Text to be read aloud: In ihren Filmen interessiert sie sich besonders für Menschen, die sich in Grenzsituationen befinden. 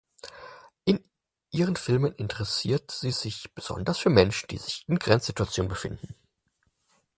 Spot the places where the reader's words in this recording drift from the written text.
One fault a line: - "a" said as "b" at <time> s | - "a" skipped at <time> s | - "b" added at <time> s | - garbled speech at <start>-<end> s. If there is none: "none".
none